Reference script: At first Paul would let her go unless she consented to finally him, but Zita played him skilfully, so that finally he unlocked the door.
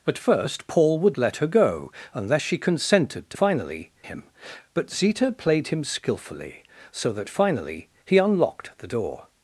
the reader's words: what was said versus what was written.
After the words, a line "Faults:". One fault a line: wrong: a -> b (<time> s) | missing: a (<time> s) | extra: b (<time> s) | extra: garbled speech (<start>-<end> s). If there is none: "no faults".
At first Paul would let her go unless she consented to finally him, but Zita played him skilfully, so that finally he unlocked the door.
Faults:
no faults